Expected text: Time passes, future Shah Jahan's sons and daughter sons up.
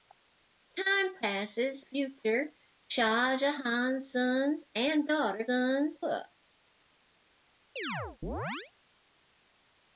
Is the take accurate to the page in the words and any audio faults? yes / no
no